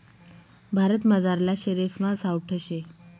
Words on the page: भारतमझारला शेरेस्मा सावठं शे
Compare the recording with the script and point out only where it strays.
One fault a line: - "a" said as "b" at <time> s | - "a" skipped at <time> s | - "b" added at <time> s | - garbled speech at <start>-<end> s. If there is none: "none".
none